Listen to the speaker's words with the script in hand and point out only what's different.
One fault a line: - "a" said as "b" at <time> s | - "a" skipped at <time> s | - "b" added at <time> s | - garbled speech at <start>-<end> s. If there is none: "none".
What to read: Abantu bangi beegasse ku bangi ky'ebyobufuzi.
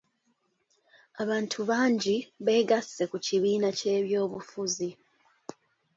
- "bangi" said as "kibiina" at 3.2 s